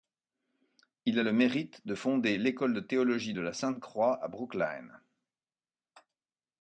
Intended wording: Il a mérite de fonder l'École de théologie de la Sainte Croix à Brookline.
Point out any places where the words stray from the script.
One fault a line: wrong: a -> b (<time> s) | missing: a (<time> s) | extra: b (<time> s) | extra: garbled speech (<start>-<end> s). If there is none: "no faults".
extra: le (1.2 s)